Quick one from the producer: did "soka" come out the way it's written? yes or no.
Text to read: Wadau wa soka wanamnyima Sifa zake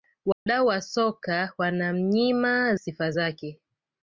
yes